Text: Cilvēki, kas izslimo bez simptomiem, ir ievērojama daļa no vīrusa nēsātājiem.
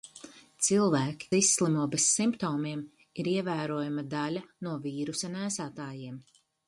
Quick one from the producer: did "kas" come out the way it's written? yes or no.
no